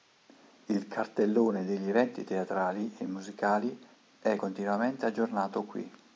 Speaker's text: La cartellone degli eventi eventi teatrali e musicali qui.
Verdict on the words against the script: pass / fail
fail